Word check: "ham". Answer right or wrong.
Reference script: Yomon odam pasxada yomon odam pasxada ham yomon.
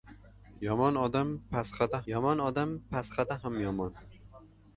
right